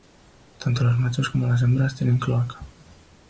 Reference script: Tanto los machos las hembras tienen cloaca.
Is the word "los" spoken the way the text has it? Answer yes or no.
yes